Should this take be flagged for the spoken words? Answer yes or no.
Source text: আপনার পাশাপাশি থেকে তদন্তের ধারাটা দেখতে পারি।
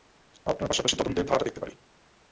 yes